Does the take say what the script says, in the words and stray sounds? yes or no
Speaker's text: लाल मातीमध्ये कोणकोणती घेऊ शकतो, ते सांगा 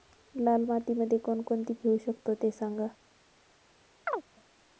no